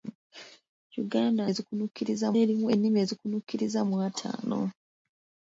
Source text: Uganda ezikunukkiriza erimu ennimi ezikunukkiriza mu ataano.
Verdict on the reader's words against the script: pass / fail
pass